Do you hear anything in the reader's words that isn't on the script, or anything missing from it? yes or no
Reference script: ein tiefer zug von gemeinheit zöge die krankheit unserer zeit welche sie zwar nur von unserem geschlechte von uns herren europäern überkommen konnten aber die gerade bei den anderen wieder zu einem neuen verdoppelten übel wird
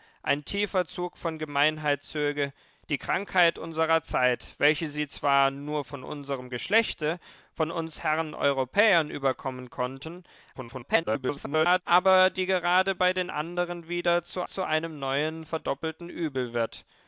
yes